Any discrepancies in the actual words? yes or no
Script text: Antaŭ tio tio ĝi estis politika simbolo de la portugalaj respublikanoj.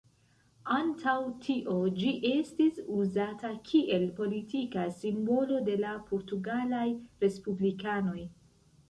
yes